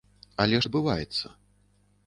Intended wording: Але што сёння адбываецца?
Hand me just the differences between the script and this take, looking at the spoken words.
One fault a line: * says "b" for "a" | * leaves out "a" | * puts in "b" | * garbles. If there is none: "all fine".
* leaves out "што сёння"